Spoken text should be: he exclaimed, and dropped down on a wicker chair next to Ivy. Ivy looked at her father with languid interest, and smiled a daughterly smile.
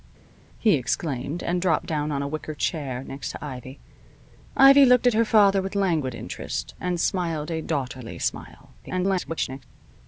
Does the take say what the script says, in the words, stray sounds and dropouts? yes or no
no